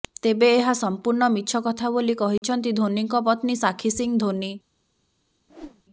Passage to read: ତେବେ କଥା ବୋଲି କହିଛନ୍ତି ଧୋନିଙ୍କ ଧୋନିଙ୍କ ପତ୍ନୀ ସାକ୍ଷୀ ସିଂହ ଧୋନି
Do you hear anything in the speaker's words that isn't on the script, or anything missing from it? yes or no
yes